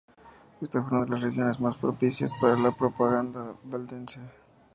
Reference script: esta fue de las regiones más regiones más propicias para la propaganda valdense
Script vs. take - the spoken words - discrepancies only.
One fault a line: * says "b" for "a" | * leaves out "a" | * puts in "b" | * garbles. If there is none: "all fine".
* puts in "una"
* leaves out "regiones más"